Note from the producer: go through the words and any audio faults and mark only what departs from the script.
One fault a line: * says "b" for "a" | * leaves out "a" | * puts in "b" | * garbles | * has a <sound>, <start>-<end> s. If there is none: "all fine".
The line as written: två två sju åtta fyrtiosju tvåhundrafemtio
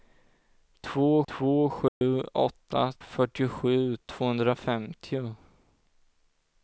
* has a dropout, 1.9-2.0 s